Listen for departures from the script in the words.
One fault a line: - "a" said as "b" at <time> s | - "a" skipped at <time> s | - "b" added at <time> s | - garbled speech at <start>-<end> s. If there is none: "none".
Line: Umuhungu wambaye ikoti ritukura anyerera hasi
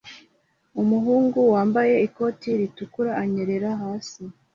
none